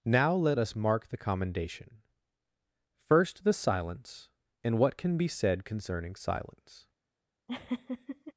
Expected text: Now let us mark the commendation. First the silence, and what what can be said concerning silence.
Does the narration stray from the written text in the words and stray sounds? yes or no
yes